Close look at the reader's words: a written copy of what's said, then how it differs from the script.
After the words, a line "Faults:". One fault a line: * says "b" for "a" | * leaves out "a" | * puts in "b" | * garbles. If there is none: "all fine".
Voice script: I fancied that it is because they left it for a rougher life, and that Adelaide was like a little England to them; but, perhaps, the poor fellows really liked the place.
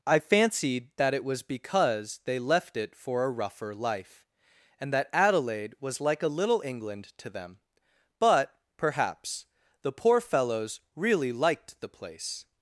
I fancied that it was because they left it for a rougher life, and that Adelaide was like a little England to them; but, perhaps, the poor fellows really liked the place.
Faults:
* says "was" for "is"